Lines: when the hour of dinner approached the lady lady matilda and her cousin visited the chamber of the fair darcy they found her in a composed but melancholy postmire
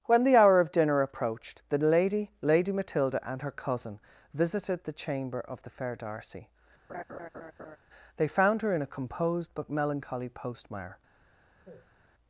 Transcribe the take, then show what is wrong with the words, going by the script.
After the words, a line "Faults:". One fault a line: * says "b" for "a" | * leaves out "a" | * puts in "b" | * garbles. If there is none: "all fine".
when the hour of dinner approached the lady lady matilda and her cousin visited the chamber of the fair darcy they found her in a composed but melancholy postmire
Faults:
all fine